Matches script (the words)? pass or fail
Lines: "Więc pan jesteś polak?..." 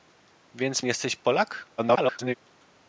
fail